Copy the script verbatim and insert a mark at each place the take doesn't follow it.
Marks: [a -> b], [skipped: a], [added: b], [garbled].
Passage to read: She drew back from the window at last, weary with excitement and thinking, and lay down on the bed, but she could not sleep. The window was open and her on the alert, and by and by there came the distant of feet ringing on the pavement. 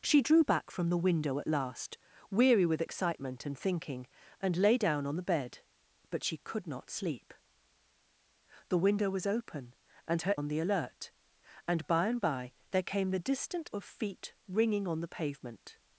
She drew back from the window at last, weary with excitement and thinking, and lay down on the bed, but she could not sleep. The window was open and her on the alert, and by and by there came the distant of feet ringing on the pavement.